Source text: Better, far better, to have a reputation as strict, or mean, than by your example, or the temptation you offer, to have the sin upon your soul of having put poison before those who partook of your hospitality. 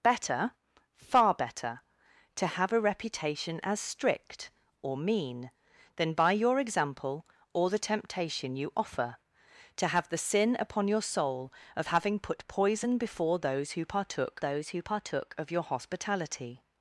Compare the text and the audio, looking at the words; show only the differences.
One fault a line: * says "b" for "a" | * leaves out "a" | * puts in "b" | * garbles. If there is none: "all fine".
* puts in "those who partook"